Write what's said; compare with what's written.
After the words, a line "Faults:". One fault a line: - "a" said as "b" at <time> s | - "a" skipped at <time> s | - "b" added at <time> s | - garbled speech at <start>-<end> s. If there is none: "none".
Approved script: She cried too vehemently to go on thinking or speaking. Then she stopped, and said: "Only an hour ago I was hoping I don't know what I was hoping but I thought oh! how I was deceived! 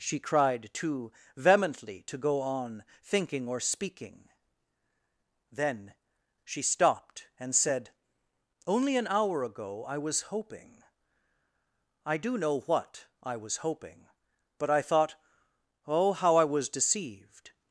She cried too vehemently to go on thinking or speaking. Then she stopped, and said: "Only an hour ago I was hoping I do know what I was hoping but I thought oh! how I was deceived!
Faults:
- "don't" said as "do" at 12.2 s